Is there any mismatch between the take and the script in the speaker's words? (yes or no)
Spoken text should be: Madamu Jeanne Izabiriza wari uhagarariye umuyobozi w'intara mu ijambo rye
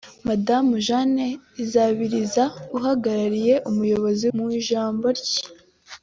yes